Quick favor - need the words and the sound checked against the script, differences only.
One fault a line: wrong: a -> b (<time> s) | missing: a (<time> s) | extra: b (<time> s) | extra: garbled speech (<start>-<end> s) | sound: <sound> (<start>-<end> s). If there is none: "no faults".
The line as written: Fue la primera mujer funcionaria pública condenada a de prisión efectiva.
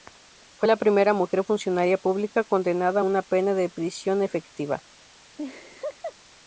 extra: una pena (3.0 s)
sound: laugh (5.4-6.2 s)